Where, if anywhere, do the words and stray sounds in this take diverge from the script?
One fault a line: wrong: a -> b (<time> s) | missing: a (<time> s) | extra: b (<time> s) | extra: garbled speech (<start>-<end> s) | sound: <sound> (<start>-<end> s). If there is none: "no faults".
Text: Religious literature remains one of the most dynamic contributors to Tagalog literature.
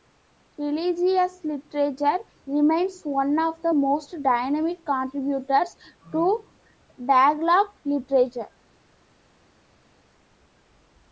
no faults